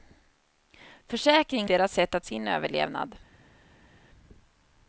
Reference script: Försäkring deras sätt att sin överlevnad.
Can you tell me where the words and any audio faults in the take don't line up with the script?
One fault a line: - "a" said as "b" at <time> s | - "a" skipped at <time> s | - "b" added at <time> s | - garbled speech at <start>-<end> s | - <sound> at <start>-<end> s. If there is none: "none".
none